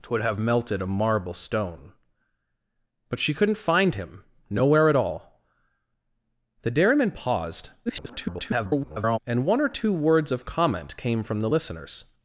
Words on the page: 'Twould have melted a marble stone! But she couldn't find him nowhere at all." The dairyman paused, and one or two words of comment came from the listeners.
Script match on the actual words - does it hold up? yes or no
no